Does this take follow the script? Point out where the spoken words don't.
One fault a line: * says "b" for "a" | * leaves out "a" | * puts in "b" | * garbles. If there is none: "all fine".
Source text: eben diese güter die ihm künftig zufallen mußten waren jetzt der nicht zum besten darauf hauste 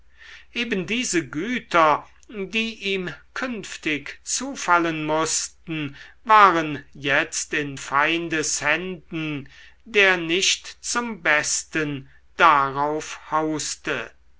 * puts in "in feindes händen"